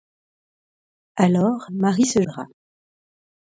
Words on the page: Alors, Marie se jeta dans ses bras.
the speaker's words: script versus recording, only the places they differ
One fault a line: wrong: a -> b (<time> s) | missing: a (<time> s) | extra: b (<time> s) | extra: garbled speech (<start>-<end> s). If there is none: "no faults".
missing: jeta dans ses (2.2 s)